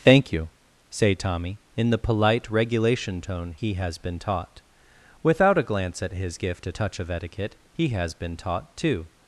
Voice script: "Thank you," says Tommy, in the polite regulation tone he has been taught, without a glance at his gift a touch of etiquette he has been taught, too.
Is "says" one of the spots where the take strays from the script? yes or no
yes